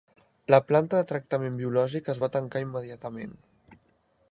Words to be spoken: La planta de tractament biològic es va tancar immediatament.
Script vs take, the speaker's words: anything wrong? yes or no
no